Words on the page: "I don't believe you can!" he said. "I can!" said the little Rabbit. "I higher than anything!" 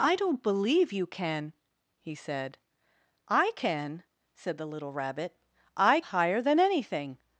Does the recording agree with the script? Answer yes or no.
yes